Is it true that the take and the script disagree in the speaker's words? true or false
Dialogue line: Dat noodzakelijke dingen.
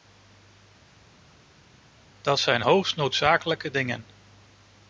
true